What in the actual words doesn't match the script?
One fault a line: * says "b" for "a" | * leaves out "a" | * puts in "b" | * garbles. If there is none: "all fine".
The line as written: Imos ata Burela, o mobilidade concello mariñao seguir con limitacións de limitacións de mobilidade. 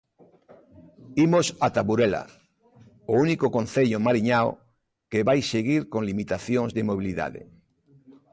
* says "único" for "mobilidade"
* puts in "que vai"
* leaves out "limitacións de"